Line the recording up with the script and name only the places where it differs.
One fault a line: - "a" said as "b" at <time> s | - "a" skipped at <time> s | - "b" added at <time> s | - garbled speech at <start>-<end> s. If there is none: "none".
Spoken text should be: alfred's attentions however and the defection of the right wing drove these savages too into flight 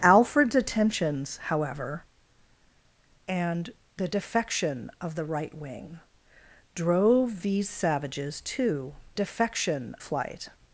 - "into" said as "defection" at 9.1 s